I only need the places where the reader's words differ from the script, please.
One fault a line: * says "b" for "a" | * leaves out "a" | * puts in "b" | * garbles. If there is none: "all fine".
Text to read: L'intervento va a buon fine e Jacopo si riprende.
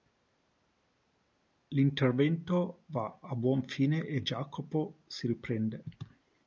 all fine